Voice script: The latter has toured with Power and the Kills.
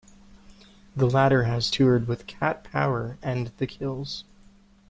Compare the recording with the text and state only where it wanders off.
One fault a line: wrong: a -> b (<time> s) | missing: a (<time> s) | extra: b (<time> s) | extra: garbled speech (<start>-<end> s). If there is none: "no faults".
extra: Cat (2.3 s)